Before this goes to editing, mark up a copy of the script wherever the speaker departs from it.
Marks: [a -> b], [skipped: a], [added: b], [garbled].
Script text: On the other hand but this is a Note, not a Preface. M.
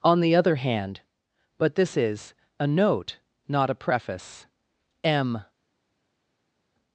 On the other hand but this is a Note, not a Preface. M.